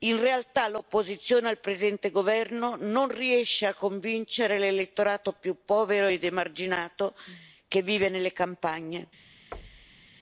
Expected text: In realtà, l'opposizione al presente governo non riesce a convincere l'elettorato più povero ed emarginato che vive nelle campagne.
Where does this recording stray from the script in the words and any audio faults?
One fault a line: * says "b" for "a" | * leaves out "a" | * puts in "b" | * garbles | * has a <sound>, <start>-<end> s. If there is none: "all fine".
* has a thud, 9.5-10.1 s